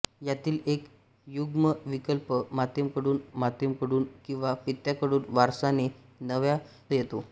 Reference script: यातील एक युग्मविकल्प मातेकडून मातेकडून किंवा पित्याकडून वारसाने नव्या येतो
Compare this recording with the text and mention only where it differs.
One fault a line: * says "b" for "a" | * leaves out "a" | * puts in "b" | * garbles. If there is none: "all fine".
all fine